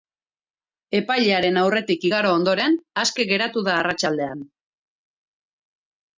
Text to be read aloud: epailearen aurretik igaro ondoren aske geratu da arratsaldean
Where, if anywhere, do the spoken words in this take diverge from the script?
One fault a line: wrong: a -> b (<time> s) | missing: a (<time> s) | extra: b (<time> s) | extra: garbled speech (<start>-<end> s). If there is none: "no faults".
no faults